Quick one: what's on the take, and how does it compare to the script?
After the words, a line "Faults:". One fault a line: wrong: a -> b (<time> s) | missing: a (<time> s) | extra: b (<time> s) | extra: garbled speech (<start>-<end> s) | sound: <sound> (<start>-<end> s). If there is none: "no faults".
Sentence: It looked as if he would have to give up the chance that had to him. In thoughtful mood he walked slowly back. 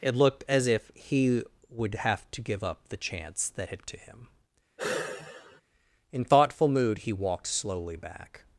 It looked as if he would have to give up the chance that had to him. In thoughtful mood he walked slowly back.
Faults:
sound: sigh (4.8-5.6 s)